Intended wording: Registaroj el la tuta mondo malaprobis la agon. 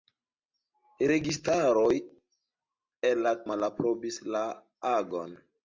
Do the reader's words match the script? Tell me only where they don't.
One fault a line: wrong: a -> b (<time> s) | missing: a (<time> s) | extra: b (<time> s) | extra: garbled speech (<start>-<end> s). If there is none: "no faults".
missing: tuta mondo (3.4 s)